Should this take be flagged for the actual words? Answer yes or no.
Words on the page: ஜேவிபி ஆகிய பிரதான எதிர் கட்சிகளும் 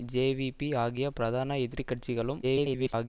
yes